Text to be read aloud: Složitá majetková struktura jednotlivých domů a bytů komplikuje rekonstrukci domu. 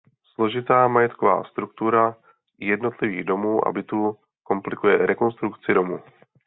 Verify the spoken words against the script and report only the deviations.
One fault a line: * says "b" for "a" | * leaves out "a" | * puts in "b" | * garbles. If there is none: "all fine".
all fine